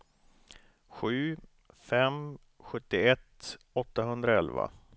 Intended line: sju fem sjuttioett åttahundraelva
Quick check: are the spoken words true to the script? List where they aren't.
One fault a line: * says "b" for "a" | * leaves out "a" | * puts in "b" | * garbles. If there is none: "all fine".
all fine